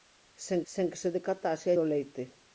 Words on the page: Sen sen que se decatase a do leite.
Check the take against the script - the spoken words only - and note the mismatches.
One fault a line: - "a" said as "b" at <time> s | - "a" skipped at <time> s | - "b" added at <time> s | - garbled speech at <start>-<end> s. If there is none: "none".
none